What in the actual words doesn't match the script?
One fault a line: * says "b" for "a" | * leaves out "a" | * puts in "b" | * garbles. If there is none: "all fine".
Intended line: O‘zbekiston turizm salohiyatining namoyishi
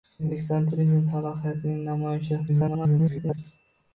* garbles